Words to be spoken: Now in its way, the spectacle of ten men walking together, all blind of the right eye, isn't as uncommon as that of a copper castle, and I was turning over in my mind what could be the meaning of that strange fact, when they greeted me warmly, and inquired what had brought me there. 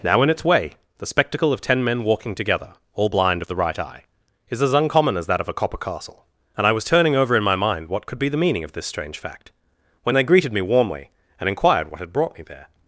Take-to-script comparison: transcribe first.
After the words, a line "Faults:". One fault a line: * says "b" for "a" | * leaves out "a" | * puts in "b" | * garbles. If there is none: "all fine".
Now in its way, the spectacle of ten men walking together, all blind of the right eye, is as uncommon as that of a copper castle, and I was turning over in my mind what could be the meaning of this strange fact, when they greeted me warmly, and inquired what had brought me there.
Faults:
* says "is" for "isn't"
* says "this" for "that"